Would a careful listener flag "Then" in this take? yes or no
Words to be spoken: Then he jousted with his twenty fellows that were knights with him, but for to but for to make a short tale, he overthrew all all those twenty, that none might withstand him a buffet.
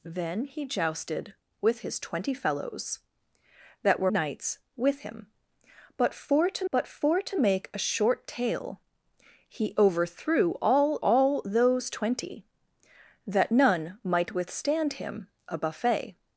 no